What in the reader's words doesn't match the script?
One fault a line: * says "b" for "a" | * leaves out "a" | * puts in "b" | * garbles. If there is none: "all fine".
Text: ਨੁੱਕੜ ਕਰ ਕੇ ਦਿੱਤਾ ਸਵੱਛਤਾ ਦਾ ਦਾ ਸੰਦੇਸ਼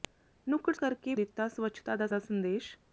all fine